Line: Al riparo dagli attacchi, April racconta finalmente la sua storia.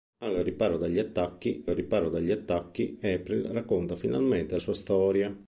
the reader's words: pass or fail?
fail